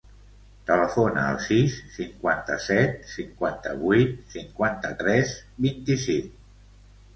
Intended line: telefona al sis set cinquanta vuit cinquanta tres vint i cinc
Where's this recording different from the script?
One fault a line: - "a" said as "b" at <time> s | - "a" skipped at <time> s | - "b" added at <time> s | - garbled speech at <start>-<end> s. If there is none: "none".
- "cinquanta" added at 2.0 s